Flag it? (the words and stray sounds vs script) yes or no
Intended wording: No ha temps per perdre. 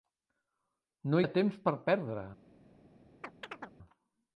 yes